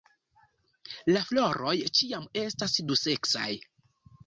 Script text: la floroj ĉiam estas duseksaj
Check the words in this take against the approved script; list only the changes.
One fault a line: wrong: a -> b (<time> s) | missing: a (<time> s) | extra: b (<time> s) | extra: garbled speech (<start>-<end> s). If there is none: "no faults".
no faults